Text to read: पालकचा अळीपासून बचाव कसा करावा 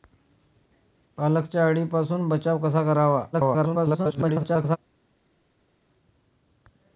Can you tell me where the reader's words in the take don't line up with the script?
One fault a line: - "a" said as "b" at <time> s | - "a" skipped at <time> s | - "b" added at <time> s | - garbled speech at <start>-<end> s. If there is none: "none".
- garbled speech at 3.3-4.8 s